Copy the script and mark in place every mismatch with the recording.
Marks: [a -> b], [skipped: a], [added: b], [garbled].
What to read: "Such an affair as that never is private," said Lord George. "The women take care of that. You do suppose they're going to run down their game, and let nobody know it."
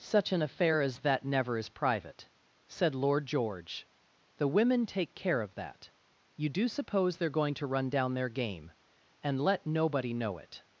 "Such an affair as that never is private," said Lord George. "The women take care of that. You do suppose they're going to run down their game, and let nobody know it."